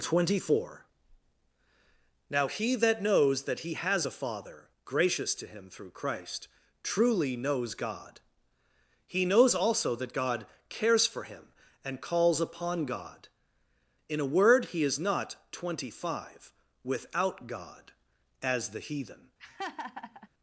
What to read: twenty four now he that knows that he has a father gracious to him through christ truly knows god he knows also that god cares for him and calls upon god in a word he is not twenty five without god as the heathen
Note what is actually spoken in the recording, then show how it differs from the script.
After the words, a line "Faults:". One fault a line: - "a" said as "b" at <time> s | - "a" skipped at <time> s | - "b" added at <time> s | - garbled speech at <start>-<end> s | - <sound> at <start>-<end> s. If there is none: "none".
twenty four now he that knows that he has a father gracious to him through christ truly knows god he knows also that god cares for him and calls upon god in a word he is not twenty five without god as the heathen
Faults:
- laugh at 19.4-20.3 s